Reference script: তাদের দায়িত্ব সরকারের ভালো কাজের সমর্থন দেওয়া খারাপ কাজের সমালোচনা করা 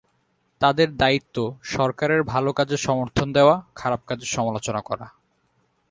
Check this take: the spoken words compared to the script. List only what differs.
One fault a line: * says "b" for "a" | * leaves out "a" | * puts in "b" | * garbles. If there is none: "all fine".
all fine